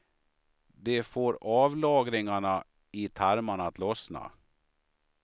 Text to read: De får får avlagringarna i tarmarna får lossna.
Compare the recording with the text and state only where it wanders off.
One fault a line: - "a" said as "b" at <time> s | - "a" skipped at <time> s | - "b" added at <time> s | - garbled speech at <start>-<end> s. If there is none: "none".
- "får" skipped at 1.4 s
- "får" said as "att" at 3.7 s